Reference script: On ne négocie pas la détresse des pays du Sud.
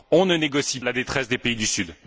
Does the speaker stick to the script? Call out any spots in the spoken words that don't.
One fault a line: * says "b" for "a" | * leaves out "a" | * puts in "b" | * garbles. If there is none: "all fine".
* leaves out "pas"